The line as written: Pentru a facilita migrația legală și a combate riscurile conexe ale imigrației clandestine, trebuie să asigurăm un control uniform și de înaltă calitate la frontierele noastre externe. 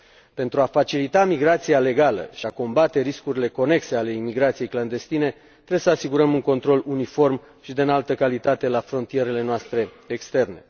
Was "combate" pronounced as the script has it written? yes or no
yes